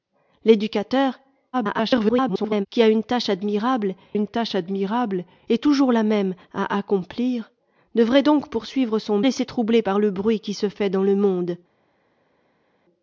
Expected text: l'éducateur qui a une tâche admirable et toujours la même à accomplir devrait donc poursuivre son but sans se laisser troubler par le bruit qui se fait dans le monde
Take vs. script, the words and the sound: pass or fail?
fail